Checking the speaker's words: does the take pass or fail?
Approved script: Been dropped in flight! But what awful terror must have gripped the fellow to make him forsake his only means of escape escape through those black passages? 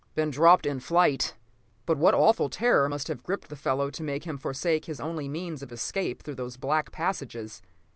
fail